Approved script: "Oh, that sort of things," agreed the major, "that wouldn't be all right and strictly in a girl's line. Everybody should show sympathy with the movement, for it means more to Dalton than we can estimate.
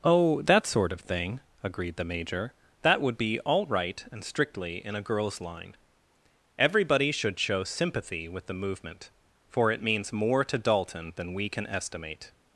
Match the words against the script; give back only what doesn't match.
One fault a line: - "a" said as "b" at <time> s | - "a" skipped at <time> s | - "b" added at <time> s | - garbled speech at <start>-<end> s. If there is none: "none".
- "things" said as "thing" at 1.0 s
- "wouldn't" said as "would" at 3.0 s